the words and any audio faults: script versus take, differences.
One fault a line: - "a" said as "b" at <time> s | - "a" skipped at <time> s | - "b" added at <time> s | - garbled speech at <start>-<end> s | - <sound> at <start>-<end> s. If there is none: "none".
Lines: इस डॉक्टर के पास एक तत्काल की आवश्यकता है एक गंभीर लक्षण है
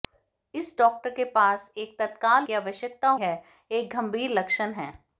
none